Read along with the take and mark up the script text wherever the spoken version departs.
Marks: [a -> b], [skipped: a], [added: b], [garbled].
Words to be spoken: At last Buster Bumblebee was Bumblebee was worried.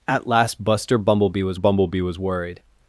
At last Buster Bumblebee was Bumblebee was worried.